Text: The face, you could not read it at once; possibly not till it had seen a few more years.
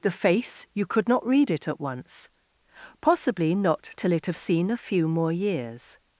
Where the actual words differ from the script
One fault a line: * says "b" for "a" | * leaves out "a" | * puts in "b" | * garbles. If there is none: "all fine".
* says "have" for "had"